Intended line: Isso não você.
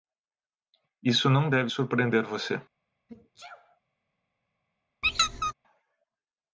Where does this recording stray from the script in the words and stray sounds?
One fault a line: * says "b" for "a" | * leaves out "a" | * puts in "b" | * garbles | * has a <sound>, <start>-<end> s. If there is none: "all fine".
* puts in "deve surpreender"
* has a sneeze, 3.1-3.8 s
* has a squeak, 5.0-5.5 s